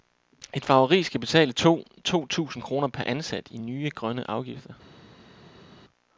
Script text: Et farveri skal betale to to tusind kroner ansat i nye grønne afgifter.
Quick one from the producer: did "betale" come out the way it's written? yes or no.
yes